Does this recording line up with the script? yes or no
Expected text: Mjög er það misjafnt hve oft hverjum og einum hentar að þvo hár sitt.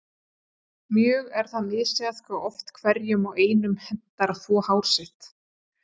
yes